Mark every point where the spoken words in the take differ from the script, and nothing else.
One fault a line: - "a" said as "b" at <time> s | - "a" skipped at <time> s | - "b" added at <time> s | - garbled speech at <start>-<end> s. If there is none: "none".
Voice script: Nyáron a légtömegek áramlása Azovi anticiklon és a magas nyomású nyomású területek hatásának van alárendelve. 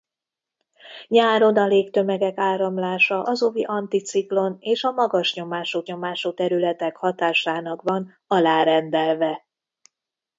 none